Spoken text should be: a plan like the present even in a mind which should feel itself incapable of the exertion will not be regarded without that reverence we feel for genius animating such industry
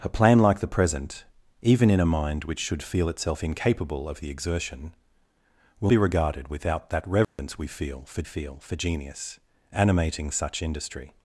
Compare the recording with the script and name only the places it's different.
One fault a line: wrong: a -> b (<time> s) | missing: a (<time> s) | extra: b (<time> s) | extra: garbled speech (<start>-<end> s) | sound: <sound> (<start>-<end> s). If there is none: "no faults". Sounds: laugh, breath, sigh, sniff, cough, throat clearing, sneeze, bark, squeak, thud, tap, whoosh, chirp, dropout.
missing: not (5.9 s)
sound: dropout (7.2-7.4 s)
extra: feel for (8.2 s)